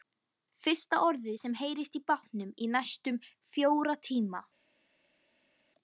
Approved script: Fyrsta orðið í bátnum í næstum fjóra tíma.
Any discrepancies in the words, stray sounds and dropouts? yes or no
yes